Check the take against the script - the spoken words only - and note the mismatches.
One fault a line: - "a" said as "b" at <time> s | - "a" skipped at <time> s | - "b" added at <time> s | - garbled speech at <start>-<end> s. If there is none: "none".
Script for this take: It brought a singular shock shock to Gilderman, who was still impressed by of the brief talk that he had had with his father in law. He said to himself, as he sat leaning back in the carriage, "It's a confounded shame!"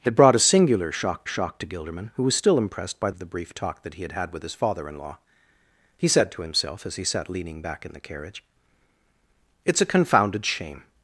none